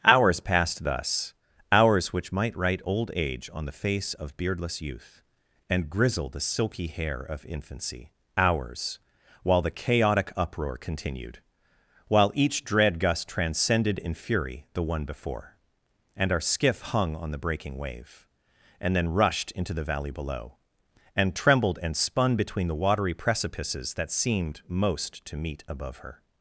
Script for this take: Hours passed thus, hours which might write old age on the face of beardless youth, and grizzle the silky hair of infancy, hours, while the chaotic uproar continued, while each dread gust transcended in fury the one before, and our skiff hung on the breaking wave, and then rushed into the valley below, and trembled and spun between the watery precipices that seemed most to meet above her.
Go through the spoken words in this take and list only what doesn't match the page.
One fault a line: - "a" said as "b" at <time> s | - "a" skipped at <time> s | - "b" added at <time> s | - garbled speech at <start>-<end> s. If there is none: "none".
none